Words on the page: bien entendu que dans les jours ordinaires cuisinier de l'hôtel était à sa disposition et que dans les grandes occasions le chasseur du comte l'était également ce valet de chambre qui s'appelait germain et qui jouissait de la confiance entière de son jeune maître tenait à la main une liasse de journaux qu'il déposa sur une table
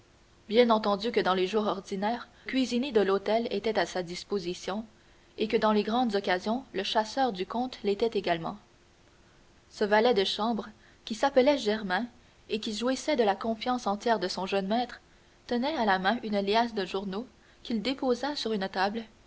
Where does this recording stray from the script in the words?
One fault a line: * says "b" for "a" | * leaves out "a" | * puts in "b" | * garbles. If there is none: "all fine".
all fine